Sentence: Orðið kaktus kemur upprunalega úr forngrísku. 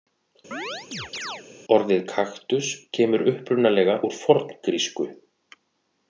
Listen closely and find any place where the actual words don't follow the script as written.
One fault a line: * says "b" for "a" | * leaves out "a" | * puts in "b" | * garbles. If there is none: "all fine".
all fine